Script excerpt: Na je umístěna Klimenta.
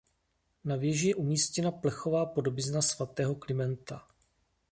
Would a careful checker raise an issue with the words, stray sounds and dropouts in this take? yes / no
yes